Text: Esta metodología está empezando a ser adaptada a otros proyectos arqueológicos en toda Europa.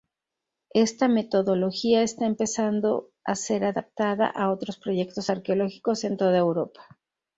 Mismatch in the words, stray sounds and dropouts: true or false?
false